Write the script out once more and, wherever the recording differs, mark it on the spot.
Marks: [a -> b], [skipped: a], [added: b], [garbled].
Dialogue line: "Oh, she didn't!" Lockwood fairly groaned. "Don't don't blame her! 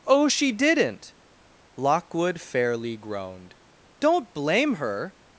"Oh, she didn't!" Lockwood fairly groaned. "Don't [skipped: don't] blame her!